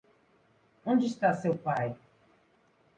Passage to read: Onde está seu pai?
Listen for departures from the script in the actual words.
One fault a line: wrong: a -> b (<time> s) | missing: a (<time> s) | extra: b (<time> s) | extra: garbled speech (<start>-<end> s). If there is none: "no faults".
no faults